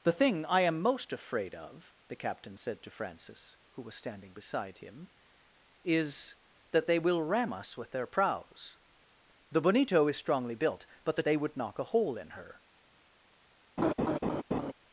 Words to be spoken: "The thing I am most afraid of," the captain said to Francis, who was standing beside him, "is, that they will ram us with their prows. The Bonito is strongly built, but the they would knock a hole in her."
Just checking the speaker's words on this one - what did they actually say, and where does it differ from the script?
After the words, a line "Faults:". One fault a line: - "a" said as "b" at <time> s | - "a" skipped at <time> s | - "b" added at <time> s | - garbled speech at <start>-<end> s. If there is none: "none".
"The thing I am most afraid of," the captain said to Francis, who was standing beside him, "is, that they will ram us with their prows. The Bonito is strongly built, but the they would knock a hole in her."
Faults:
none